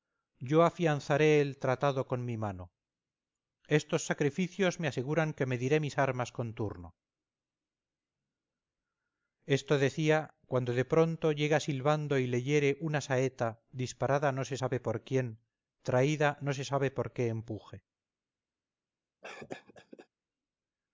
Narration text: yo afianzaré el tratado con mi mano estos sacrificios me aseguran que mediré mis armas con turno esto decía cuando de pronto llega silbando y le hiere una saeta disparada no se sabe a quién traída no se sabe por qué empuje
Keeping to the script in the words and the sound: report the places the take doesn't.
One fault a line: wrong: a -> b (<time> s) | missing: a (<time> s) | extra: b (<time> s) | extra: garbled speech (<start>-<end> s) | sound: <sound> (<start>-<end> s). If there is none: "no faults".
wrong: a -> por (14.8 s)
sound: cough (19.2-20.1 s)